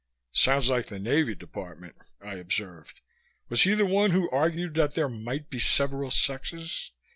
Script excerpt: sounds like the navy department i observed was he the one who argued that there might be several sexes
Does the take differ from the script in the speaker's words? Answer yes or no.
no